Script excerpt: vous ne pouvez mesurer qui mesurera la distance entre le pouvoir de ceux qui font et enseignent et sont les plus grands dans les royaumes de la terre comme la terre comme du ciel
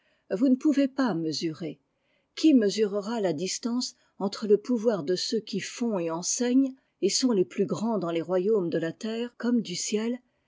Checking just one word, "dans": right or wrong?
right